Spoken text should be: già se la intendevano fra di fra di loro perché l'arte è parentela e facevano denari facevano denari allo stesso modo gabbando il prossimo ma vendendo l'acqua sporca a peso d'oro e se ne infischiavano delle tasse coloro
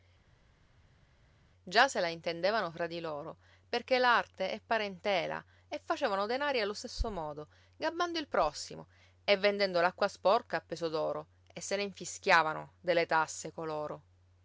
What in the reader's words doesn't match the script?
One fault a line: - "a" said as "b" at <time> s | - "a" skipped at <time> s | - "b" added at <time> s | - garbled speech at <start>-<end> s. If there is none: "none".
- "fra di" skipped at 3.0 s
- "facevano denari" skipped at 6.6 s
- "ma" said as "e" at 9.2 s